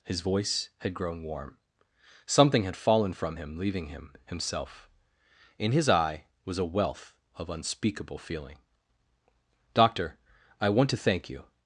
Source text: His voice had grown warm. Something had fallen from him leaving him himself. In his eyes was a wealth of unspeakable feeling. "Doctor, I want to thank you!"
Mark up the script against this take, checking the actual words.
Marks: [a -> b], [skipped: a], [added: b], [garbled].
His voice had grown warm. Something had fallen from him leaving him himself. In his [eyes -> eye] was a wealth of unspeakable feeling. "Doctor, I want to thank you!"